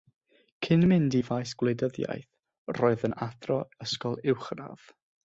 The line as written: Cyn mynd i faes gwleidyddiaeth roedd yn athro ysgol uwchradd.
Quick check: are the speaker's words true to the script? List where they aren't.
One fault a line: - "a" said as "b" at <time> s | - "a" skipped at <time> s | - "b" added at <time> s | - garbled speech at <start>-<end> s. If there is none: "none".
none